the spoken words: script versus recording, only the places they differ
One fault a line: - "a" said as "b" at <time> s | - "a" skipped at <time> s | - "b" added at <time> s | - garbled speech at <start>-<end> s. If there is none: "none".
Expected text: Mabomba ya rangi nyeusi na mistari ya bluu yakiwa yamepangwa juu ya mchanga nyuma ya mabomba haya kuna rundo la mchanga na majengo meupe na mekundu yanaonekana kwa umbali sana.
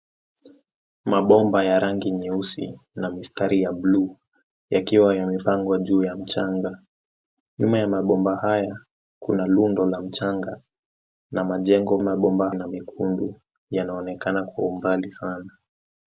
- "meupe" said as "mabomba" at 12.0 s